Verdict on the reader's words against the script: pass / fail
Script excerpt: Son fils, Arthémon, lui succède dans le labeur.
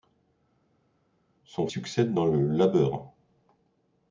fail